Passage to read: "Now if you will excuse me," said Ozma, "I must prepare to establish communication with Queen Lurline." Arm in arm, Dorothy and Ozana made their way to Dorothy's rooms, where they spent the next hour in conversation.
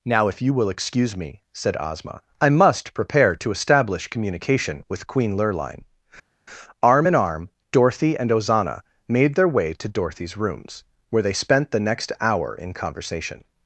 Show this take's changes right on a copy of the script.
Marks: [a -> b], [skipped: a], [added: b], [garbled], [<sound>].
"Now if you will excuse me," said Ozma, "I must prepare to establish communication with Queen Lurline." Arm in arm, Dorothy and Ozana made their way to Dorothy's rooms, where they spent the next hour in conversation.